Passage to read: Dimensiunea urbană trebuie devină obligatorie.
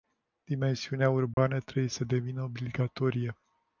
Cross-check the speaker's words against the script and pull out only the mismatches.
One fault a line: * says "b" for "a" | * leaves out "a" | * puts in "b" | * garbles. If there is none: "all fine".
* puts in "să"